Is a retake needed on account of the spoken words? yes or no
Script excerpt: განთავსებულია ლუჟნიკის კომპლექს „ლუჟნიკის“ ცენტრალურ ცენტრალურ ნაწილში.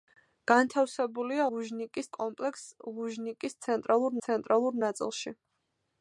no